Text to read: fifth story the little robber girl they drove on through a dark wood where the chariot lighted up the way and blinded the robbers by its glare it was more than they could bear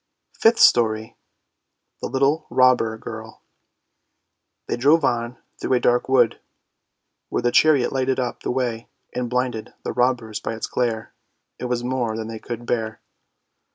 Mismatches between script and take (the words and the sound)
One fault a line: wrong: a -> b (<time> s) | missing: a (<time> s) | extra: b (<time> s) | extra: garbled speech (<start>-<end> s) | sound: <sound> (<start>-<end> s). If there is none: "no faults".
no faults